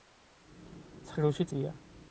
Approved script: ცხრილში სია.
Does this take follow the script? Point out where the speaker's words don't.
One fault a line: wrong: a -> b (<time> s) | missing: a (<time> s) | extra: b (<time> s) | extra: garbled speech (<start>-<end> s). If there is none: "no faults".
no faults